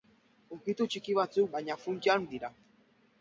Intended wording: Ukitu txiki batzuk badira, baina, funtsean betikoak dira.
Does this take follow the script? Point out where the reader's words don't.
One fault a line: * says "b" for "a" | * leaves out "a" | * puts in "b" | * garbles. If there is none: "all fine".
* leaves out "badira"
* leaves out "betikoak"